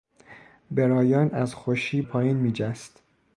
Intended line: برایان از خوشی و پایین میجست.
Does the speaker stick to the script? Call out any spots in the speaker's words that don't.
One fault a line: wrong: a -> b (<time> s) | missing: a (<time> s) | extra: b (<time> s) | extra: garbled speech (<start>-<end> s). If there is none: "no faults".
no faults